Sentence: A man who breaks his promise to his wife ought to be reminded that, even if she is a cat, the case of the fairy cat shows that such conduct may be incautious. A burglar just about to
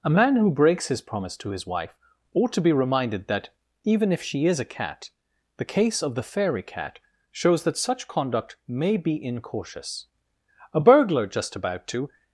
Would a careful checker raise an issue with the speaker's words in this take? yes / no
no